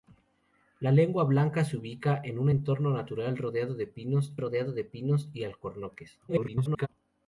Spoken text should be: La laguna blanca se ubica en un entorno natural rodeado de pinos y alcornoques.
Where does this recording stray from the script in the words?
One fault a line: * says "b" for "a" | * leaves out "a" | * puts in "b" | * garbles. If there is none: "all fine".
* puts in "rodeado de pinos"
* garbles